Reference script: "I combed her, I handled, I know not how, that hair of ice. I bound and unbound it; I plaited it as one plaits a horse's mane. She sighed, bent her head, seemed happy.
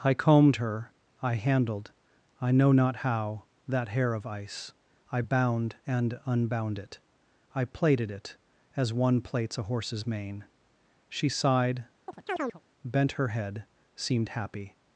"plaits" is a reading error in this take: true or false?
false